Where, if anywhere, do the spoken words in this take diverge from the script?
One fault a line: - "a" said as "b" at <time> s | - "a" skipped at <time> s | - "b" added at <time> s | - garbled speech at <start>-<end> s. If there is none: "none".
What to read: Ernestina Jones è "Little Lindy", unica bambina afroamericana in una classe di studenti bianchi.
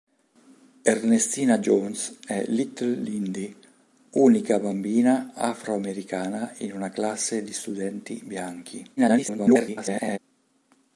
- garbled speech at 9.0-10.2 s